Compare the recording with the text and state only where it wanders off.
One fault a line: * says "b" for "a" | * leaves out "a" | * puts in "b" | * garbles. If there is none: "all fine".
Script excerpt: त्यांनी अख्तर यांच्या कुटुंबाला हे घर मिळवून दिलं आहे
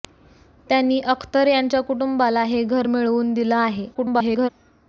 * garbles